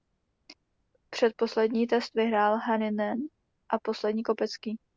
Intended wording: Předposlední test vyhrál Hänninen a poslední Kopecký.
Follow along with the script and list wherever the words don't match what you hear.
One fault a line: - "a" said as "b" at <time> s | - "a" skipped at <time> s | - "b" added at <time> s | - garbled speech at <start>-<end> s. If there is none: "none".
none